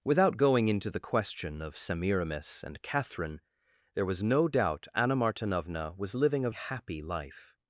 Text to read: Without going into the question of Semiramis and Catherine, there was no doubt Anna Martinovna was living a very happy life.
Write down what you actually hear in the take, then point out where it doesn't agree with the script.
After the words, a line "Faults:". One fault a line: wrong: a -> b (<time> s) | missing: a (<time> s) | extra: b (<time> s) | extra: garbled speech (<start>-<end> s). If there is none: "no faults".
Without going into the question of Semiramis and Catherine, there was no doubt Anna Martinovna was living a happy life.
Faults:
missing: very (6.5 s)